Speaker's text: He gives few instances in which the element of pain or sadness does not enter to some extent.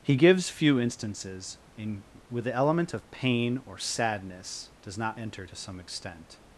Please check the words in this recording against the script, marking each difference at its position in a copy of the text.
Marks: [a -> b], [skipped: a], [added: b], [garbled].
He gives few instances in [which -> with] the element of pain or sadness does not enter to some extent.